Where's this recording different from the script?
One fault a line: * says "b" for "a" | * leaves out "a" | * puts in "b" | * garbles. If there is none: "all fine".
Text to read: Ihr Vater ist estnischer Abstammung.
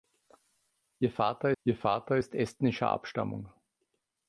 * puts in "ihr Vater"